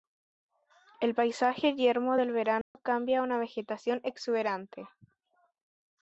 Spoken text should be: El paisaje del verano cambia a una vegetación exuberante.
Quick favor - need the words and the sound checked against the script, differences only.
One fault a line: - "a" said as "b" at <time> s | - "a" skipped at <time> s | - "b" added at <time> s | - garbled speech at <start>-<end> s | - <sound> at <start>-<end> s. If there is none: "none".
- "yermo" added at 1.8 s
- dropout at 2.6-2.7 s